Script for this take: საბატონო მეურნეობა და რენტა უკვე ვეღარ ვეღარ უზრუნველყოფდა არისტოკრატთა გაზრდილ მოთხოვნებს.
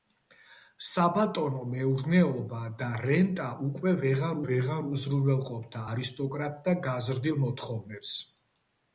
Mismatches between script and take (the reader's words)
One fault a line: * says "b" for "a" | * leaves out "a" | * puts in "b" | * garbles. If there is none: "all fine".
all fine